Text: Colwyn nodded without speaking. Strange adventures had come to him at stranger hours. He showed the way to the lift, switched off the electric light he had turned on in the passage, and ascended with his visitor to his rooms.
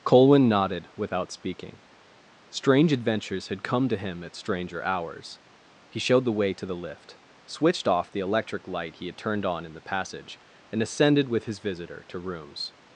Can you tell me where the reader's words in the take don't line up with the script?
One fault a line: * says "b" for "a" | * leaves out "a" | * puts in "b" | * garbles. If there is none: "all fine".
* leaves out "his"